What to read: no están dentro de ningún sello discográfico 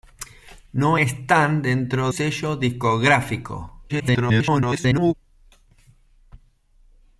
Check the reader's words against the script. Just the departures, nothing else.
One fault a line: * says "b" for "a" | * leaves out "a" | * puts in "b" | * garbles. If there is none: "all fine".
* leaves out "de ningún"
* garbles